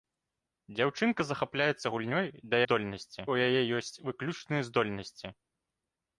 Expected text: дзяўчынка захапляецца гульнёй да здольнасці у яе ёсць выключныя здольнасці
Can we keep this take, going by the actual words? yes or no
yes